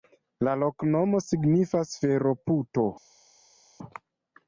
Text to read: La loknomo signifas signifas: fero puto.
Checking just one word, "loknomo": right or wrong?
right